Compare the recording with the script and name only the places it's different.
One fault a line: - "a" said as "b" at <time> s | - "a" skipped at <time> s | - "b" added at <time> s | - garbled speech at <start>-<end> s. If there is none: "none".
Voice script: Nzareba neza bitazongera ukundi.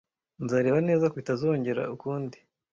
none